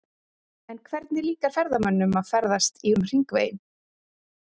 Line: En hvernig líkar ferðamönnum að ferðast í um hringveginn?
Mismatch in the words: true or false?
false